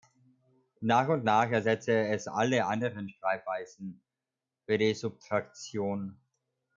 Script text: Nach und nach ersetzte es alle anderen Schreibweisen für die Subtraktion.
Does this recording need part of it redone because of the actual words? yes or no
no